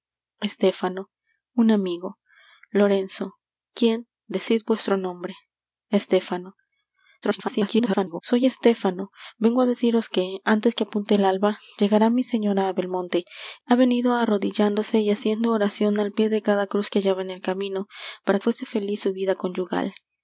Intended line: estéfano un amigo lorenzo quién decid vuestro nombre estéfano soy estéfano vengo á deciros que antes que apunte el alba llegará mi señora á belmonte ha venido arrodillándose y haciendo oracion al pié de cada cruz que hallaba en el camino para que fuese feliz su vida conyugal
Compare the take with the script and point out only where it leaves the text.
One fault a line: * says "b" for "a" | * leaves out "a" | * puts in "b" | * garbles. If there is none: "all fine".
* garbles
* leaves out "que"